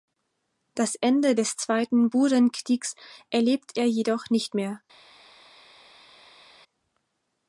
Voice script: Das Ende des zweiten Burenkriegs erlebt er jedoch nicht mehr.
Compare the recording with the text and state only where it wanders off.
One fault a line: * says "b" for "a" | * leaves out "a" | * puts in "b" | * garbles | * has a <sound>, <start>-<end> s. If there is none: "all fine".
all fine